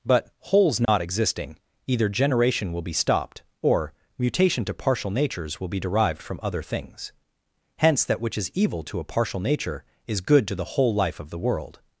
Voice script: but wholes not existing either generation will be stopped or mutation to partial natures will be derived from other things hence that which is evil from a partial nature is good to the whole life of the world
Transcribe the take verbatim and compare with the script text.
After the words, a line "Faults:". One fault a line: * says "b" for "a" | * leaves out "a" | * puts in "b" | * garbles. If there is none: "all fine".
but wholes not existing either generation will be stopped or mutation to partial natures will be derived from other things hence that which is evil to a partial nature is good to the whole life of the world
Faults:
* says "to" for "from"